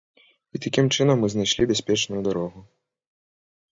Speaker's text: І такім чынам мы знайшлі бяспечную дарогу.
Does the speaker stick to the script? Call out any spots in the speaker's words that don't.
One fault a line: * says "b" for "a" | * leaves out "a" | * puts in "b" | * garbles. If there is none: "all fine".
all fine